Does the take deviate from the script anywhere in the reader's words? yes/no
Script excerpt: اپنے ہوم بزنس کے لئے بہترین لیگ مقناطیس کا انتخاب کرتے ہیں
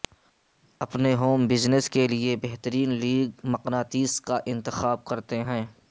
no